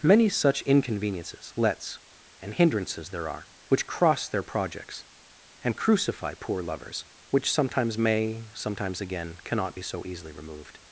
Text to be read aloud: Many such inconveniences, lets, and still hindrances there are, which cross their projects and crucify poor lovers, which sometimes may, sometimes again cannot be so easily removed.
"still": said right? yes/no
no